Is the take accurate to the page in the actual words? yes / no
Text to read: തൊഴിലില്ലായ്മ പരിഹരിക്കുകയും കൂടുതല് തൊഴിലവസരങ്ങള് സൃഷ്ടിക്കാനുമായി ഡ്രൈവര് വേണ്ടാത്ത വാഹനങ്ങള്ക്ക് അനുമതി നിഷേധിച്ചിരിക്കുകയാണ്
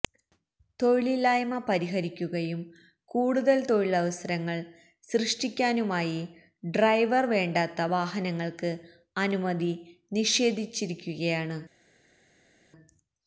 yes